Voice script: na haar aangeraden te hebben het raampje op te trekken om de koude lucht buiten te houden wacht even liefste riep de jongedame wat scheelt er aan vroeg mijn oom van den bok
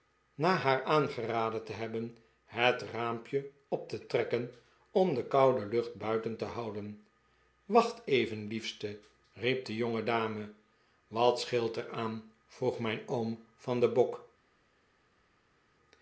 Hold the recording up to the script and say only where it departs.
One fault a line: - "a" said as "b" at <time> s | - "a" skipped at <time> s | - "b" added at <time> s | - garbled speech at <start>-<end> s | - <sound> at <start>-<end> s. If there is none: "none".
none